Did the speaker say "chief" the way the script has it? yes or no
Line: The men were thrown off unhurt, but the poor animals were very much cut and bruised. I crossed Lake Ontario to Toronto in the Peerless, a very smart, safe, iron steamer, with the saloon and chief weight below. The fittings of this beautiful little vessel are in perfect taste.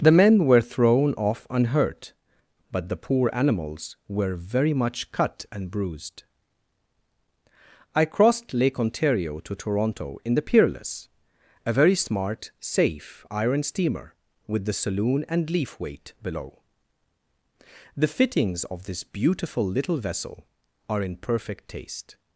no